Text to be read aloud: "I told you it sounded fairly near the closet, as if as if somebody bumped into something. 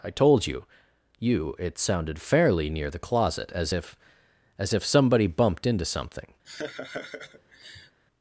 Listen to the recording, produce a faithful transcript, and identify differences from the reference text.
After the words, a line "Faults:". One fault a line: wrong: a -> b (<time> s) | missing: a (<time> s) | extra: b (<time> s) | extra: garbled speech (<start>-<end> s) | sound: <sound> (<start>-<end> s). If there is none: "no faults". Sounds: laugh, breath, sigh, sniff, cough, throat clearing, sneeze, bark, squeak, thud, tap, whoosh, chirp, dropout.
"I told you you it sounded fairly near the closet, as if as if somebody bumped into something.
Faults:
extra: you (1.2 s)
sound: laugh (6.4-8.0 s)